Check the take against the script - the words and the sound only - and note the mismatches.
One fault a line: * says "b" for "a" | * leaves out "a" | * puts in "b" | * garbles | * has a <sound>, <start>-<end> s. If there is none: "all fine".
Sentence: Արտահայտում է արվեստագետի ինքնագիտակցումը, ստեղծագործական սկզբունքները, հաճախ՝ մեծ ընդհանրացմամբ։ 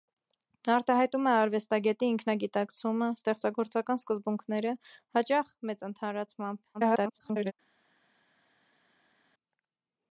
* garbles